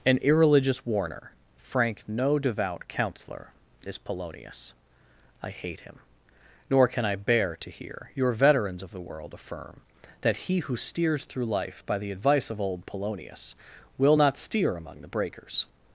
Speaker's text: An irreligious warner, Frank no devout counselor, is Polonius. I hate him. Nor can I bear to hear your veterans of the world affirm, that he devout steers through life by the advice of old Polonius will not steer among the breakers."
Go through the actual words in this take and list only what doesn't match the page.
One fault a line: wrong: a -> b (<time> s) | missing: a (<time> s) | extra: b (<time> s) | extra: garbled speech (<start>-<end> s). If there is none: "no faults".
wrong: devout -> who (10.6 s)